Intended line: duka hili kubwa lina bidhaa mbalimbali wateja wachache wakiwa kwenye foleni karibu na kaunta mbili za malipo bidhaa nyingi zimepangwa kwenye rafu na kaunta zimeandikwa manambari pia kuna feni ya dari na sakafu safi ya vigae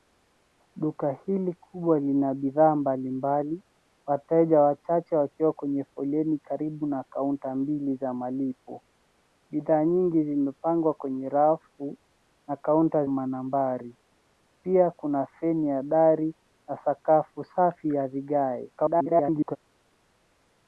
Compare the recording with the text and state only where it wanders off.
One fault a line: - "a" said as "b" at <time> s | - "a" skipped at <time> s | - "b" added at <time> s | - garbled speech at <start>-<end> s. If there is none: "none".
- "zimeandikwa" skipped at 13.1 s
- garbled speech at 18.8-19.6 s